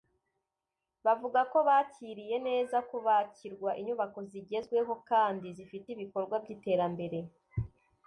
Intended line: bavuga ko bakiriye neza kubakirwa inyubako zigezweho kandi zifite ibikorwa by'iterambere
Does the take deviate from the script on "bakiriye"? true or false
false